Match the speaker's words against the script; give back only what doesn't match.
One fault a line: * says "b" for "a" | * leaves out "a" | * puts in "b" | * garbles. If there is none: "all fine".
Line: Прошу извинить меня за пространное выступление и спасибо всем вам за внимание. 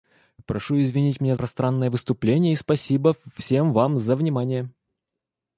* leaves out "за"